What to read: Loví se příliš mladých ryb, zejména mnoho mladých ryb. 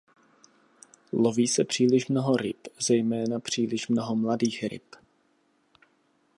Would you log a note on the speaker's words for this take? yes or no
yes